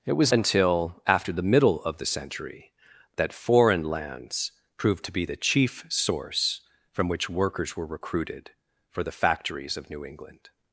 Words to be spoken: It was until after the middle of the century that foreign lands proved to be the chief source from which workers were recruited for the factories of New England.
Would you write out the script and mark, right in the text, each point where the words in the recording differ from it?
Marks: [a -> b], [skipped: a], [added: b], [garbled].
It was until after the middle of the century that foreign lands proved to be the chief source from which workers were recruited for the factories of New England.